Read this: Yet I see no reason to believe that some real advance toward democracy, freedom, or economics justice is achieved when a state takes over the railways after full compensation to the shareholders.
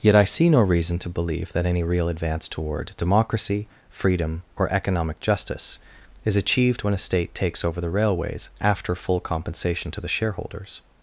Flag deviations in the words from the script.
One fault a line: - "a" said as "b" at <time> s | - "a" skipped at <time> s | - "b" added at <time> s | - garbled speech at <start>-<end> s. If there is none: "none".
- "some" said as "any" at 1.7 s
- "economics" said as "economic" at 4.7 s